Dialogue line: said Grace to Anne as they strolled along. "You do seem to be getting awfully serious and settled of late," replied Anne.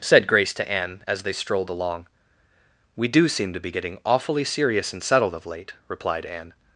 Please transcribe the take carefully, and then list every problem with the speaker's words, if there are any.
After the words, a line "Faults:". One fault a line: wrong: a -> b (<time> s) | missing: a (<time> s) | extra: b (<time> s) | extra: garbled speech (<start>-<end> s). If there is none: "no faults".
said Grace to Anne as they strolled along. "We do seem to be getting awfully serious and settled of late," replied Anne.
Faults:
wrong: You -> We (2.9 s)